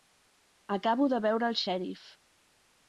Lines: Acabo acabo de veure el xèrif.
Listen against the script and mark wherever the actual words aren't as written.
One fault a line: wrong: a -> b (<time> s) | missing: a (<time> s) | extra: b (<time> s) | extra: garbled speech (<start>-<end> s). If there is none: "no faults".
missing: acabo (1.1 s)